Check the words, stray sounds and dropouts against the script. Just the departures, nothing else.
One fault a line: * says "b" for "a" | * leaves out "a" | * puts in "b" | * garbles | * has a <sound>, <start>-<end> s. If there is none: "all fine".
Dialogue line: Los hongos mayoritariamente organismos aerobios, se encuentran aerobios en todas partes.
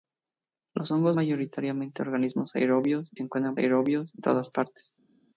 all fine